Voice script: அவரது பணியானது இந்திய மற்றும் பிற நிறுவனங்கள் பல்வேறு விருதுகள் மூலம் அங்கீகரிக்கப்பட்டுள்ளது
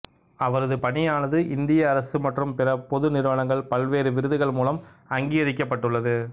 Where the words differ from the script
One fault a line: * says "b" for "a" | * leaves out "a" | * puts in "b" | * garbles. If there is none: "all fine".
* puts in "அரசு"
* puts in "பொது"